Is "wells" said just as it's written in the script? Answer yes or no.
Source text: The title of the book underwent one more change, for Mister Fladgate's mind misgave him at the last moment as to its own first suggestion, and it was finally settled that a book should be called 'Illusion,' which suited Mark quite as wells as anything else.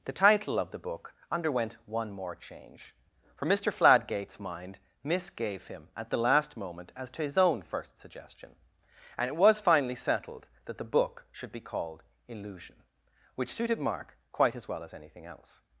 no